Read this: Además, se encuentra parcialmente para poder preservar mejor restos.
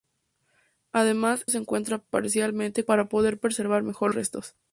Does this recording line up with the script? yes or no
yes